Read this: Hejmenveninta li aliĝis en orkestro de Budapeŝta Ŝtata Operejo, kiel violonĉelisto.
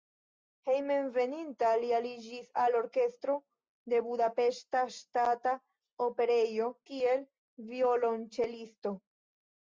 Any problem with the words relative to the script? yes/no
yes